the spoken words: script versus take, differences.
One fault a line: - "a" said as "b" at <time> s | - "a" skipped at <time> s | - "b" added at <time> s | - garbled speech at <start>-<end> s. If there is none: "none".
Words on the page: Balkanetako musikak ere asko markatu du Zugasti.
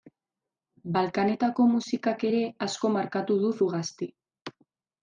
none